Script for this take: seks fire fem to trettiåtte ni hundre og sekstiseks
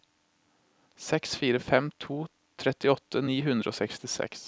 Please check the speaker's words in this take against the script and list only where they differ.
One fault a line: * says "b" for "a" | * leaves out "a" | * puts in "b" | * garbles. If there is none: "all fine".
all fine